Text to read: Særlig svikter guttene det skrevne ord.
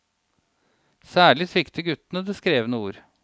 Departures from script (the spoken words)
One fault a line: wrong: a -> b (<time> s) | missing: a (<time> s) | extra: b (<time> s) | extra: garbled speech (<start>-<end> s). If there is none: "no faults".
no faults